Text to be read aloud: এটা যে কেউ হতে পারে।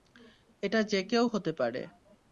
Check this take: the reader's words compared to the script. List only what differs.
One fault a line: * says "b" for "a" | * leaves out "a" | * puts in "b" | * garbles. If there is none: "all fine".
all fine